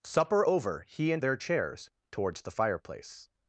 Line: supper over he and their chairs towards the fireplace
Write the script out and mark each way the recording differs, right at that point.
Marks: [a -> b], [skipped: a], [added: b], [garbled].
supper over he and their chairs towards the fireplace